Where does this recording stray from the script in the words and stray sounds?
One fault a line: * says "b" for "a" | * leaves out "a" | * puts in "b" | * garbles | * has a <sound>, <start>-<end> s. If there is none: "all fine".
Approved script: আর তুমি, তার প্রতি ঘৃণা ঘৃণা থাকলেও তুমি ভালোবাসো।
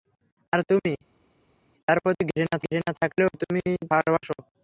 all fine